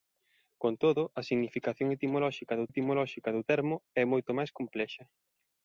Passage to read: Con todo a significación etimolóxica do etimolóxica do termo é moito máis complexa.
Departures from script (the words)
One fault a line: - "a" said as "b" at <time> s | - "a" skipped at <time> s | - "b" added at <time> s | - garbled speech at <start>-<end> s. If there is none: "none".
none